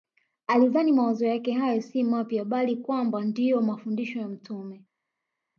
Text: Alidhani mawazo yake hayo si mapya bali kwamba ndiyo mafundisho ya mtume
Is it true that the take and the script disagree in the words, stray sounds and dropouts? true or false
false